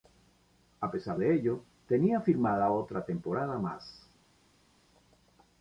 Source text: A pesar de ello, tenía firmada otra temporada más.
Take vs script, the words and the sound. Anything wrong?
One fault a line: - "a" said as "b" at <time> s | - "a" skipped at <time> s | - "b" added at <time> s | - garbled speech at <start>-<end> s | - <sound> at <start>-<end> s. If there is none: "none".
none